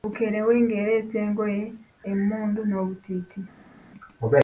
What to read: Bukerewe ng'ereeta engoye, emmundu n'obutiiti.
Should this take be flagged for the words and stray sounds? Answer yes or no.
no